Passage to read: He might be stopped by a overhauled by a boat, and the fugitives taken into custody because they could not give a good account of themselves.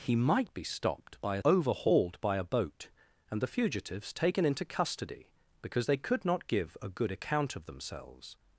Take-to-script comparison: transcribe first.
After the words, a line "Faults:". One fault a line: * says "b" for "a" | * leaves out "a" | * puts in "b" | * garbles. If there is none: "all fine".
He might be stopped by a overhauled by a boat, and the fugitives taken into custody because they could not give a good account of themselves.
Faults:
all fine